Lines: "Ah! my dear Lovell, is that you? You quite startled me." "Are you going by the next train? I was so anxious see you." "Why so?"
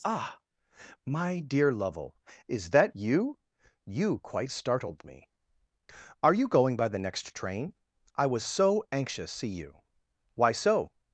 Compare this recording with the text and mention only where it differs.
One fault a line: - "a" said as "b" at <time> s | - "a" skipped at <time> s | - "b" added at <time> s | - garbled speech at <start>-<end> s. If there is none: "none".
none